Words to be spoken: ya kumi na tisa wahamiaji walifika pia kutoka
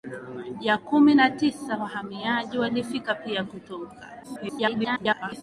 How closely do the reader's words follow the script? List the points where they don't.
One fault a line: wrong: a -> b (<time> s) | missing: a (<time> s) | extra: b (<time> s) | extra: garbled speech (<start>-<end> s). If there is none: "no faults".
extra: garbled speech (4.2-5.4 s)